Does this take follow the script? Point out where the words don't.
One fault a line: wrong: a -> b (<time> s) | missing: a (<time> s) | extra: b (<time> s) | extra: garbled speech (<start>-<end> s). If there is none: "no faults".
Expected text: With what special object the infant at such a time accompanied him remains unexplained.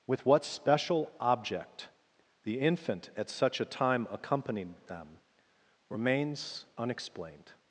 wrong: him -> them (4.9 s)